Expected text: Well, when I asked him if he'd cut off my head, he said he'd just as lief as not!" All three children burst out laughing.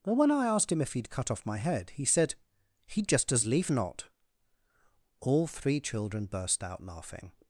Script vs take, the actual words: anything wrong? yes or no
yes